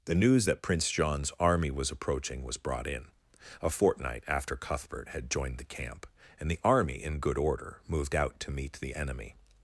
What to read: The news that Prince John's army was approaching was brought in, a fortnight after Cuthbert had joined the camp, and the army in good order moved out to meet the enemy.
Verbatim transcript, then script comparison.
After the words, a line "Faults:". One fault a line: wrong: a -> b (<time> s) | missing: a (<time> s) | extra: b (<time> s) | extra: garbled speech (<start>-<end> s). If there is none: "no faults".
The news that Prince John's army was approaching was brought in, a fortnight after Cuthbert had joined the camp, and the army in good order moved out to meet the enemy.
Faults:
no faults